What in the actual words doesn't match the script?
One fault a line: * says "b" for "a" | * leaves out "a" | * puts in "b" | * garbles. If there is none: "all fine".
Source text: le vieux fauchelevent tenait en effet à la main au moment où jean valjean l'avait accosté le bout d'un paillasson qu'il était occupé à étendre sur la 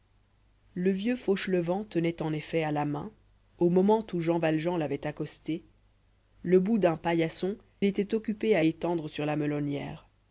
* leaves out "qu'il"